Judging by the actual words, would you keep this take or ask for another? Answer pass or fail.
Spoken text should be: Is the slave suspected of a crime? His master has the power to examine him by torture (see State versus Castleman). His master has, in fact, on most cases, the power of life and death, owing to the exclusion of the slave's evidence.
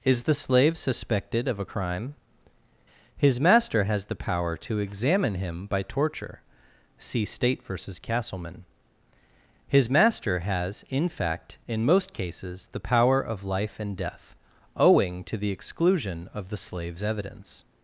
fail